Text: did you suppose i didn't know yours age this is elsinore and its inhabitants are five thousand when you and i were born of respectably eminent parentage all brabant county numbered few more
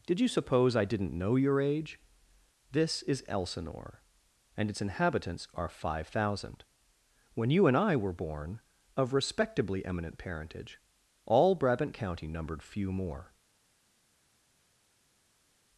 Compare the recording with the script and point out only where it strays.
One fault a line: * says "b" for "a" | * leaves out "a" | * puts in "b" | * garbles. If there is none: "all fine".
* says "your" for "yours"